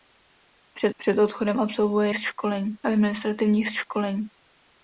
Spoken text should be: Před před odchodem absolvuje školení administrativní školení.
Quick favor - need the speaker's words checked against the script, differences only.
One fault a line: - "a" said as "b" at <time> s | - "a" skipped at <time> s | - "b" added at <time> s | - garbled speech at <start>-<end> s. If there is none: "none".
none